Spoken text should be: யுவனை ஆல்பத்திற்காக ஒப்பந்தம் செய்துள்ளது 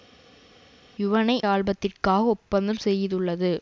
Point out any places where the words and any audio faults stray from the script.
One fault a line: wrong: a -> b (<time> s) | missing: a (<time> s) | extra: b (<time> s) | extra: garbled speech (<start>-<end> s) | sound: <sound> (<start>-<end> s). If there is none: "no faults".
no faults